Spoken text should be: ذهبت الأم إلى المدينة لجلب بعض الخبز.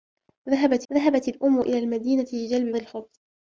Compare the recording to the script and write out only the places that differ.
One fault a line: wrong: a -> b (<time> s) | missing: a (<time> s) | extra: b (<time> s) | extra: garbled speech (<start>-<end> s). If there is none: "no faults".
extra: ذهبت (0.9 s)
missing: بعض (2.8 s)